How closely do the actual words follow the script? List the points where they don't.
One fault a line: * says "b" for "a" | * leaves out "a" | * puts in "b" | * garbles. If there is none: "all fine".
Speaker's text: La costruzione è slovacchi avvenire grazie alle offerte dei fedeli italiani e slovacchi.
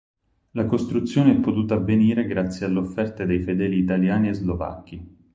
* says "potuta" for "slovacchi"